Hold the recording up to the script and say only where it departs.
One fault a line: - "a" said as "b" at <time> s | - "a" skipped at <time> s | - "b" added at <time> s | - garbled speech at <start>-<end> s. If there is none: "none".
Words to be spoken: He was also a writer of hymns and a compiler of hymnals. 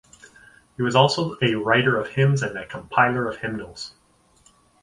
none